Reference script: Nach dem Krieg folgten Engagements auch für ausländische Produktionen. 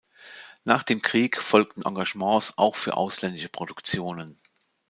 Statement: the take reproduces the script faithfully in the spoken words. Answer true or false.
true